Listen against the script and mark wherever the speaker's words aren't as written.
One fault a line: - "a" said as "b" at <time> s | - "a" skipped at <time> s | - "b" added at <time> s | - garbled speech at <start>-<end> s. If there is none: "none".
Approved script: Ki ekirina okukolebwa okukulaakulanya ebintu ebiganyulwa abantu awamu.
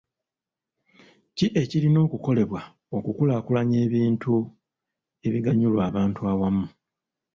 none